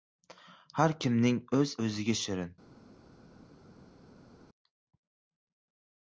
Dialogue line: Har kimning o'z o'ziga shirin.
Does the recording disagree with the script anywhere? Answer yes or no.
no